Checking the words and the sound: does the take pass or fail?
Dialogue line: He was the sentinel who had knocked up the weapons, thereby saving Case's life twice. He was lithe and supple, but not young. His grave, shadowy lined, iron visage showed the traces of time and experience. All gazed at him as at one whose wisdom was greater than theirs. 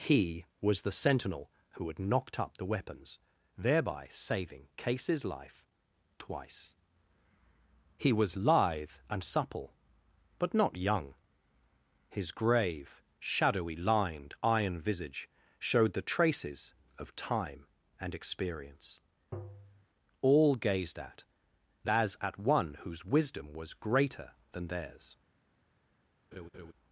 fail